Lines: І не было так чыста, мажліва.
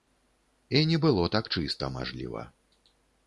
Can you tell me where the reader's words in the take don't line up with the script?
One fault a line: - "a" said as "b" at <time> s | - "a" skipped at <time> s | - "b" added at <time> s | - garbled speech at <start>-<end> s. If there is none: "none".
none